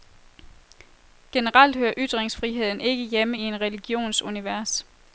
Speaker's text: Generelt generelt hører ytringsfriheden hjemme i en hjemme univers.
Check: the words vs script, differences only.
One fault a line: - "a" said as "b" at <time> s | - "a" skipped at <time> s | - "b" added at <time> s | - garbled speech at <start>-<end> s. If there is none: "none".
- "generelt" skipped at 1.8 s
- "ikke" added at 2.8 s
- "hjemme" said as "religions" at 3.6 s